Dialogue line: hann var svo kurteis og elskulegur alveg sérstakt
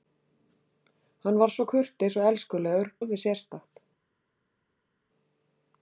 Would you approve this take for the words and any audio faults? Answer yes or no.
yes